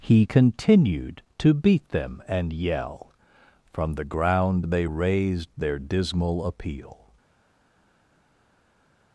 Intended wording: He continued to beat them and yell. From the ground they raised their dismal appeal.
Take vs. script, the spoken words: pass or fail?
pass